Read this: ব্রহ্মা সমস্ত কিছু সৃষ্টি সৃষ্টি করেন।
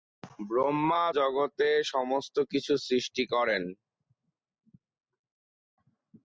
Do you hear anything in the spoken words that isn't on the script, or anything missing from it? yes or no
yes